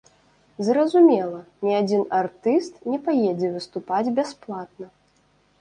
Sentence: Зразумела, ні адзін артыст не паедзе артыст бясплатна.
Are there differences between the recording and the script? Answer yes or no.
yes